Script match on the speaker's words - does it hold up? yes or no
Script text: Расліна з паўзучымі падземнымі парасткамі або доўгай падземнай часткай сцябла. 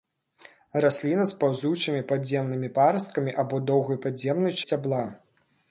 no